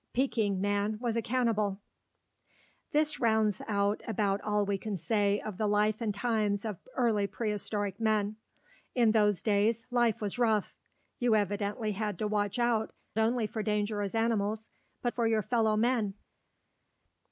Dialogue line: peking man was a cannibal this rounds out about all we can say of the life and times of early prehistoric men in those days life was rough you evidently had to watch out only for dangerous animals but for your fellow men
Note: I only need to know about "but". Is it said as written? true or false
true